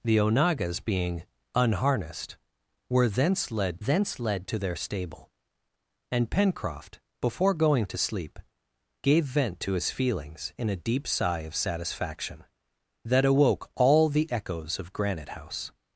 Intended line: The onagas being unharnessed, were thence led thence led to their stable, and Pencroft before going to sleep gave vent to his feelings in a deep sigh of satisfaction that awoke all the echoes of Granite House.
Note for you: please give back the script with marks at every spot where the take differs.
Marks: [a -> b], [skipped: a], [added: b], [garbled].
The onagas being unharnessed, were thence led thence led to their stable, and Pencroft before going to sleep gave vent to his feelings in a deep sigh of satisfaction that awoke all the echoes of Granite House.